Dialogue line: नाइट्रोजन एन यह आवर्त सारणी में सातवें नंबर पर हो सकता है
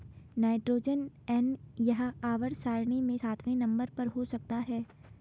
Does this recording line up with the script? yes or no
yes